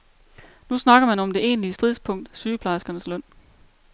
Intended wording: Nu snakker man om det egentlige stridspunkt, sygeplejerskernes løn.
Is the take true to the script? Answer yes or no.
yes